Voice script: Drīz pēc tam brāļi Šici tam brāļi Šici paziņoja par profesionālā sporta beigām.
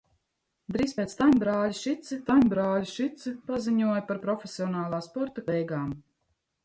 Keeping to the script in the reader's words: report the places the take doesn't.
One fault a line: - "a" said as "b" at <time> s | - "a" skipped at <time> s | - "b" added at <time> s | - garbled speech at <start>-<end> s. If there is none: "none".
none